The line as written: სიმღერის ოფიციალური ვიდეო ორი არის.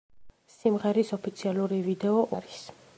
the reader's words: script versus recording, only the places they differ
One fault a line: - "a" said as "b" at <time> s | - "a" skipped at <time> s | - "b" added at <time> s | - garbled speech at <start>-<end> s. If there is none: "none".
- "ორი" skipped at 2.2 s